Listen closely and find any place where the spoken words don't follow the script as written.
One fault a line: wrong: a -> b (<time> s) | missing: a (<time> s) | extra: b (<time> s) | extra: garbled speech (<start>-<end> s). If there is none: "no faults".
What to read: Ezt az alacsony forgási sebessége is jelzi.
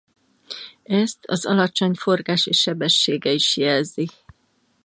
no faults